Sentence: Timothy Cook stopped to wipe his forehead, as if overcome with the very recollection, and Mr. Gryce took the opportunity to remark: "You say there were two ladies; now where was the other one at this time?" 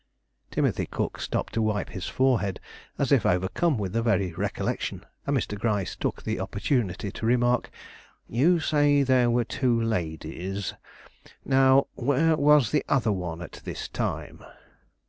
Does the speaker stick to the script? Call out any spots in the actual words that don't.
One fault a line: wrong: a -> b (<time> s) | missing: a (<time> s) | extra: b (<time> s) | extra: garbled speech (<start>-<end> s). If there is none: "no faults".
no faults